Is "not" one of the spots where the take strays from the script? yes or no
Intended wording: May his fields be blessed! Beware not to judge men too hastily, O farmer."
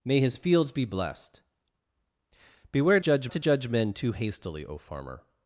yes